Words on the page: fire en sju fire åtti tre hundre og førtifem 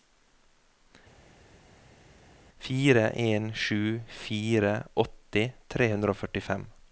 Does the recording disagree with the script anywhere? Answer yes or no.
no